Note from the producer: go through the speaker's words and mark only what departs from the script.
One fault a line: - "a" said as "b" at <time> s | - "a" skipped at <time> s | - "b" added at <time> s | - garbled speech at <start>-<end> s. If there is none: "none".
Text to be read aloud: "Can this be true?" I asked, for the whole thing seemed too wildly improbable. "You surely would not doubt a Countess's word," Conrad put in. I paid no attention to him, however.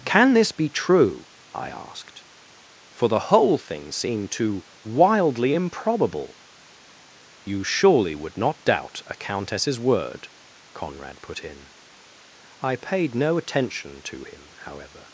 none